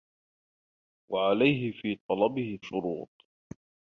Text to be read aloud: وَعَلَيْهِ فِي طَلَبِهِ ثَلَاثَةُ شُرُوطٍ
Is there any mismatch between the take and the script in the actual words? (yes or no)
yes